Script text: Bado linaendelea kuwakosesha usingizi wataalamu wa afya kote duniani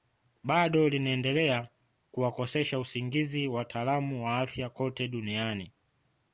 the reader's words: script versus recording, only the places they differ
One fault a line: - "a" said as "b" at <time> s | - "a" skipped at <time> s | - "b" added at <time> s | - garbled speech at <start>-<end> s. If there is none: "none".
none